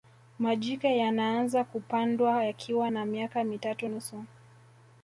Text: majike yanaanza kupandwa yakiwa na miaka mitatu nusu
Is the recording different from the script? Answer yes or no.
no